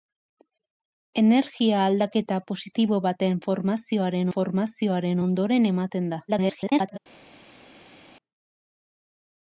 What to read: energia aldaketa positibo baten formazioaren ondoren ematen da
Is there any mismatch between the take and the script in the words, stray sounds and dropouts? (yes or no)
yes